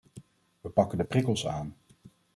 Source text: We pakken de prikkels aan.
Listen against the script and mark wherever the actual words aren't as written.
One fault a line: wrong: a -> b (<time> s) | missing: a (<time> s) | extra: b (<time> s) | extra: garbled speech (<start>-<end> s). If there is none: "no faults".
no faults